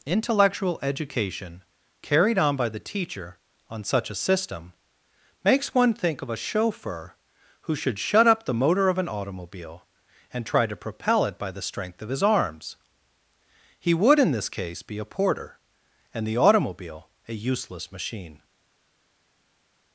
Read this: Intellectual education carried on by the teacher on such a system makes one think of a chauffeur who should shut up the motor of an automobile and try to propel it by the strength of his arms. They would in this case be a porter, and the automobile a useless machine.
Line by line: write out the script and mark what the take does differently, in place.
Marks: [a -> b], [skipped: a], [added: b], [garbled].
Intellectual education carried on by the teacher on such a system makes one think of a chauffeur who should shut up the motor of an automobile and try to propel it by the strength of his arms. [They -> He] would in this case be a porter, and the automobile a useless machine.